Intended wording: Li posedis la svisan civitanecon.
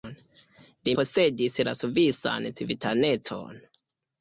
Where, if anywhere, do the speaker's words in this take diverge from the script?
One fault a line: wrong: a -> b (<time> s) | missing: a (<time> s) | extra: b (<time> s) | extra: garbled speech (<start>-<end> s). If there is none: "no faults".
no faults